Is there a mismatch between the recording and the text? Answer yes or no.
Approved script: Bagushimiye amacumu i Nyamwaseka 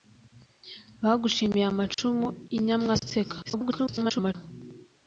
yes